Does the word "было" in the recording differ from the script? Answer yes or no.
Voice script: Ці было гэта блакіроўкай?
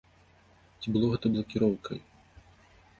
no